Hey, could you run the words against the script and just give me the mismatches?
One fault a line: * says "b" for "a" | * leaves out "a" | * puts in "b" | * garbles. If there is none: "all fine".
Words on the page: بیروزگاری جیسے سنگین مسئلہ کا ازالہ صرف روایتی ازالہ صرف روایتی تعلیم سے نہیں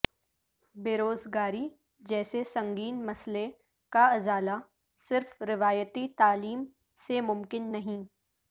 * leaves out "ازالہ صرف روایتی"
* puts in "ممکن"